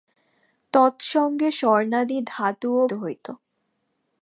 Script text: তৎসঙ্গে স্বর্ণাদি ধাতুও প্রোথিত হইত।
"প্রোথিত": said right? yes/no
no